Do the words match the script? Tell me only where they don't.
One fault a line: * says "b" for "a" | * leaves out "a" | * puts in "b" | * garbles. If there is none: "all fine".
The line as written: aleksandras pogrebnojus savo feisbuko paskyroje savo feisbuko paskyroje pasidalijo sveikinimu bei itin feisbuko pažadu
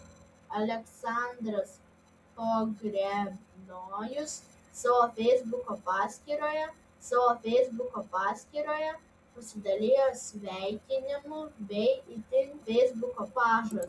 all fine